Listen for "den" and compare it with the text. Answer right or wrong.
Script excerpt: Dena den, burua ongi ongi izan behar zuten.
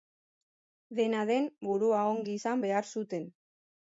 right